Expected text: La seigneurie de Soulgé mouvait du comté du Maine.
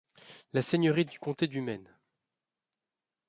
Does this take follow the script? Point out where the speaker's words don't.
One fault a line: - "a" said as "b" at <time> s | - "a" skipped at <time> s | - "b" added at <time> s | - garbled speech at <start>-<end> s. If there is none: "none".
- "de Soulgé mouvait" skipped at 1.1 s